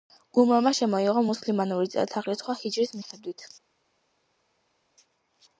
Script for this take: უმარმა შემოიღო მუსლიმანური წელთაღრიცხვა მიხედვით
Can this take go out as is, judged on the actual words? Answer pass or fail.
fail